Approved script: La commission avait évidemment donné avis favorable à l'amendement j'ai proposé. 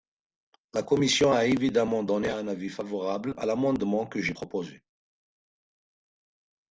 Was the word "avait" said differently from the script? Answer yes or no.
yes